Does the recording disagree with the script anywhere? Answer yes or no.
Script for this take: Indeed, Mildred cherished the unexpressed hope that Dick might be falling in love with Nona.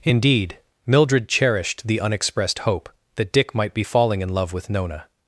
no